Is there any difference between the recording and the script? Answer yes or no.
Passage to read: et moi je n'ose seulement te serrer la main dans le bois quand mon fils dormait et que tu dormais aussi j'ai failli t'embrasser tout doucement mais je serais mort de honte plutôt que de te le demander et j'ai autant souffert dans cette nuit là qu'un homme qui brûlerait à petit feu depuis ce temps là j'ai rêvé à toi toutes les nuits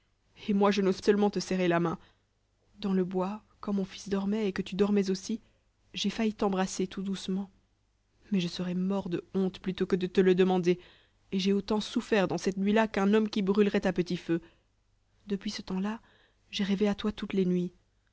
no